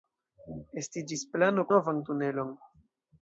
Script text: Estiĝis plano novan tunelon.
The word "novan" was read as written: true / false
true